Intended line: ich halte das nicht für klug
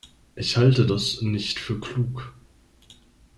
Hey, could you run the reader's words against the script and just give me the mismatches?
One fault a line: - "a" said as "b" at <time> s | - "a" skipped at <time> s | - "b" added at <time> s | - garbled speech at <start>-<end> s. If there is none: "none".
none